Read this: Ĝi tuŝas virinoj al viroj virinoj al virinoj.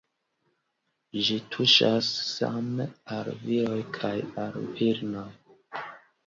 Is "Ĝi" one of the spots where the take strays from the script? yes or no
no